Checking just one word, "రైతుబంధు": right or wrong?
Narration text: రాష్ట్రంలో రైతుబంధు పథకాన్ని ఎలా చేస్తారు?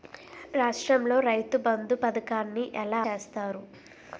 right